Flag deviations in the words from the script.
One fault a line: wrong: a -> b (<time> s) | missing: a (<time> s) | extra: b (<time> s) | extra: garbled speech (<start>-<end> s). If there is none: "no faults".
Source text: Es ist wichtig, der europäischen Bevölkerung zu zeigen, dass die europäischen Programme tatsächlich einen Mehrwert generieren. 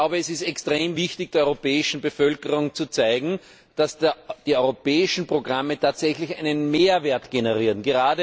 extra: extrem (0.4 s)